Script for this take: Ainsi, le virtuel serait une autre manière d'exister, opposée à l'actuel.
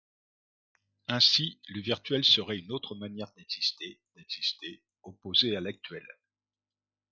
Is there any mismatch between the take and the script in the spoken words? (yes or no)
yes